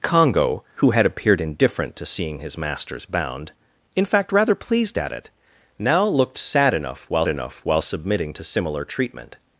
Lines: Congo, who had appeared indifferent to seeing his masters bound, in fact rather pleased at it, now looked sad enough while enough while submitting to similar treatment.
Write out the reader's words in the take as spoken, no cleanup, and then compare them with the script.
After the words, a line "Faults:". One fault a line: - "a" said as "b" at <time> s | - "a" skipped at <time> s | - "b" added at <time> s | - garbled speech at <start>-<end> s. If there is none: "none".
Congo, who had appeared indifferent to seeing his masters bound, in fact rather pleased at it, now looked sad enough while enough while submitting to similar treatment.
Faults:
none